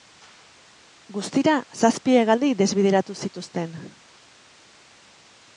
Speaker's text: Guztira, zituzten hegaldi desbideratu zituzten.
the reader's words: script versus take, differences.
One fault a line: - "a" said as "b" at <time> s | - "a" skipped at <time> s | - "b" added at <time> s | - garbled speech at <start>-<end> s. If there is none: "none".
- "zituzten" said as "zazpi" at 1.8 s